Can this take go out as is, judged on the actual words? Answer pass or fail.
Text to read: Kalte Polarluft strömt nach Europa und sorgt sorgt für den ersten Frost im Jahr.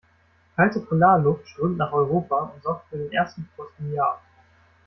fail